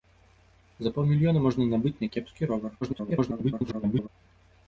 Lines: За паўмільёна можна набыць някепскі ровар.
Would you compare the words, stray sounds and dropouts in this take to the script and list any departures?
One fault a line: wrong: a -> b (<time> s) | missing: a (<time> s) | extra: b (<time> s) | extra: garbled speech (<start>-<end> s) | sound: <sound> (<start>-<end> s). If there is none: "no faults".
extra: garbled speech (2.8-4.1 s)